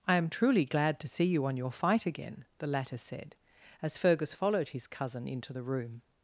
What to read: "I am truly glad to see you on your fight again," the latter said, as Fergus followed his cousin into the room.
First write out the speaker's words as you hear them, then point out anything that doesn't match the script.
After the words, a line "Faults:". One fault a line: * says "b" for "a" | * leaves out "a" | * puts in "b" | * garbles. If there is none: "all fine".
"I am truly glad to see you on your fight again," the latter said, as Fergus followed his cousin into the room.
Faults:
all fine